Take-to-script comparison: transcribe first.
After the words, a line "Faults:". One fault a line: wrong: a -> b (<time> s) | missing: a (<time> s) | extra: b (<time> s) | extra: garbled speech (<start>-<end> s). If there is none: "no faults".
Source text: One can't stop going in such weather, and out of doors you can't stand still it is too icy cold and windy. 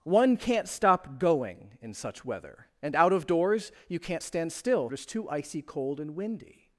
One can't stop going in such weather, and out of doors you can't stand still it is too icy cold and windy.
Faults:
no faults